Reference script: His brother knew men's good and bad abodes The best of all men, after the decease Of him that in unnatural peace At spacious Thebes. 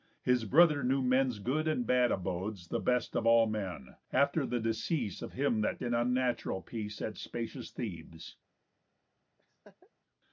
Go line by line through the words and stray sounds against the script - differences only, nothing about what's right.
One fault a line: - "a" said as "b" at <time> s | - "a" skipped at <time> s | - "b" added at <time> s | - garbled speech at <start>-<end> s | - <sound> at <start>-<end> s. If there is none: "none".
- laugh at 9.4-9.9 s